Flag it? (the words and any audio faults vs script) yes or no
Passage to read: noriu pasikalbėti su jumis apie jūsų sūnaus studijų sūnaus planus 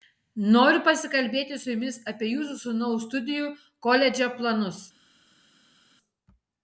yes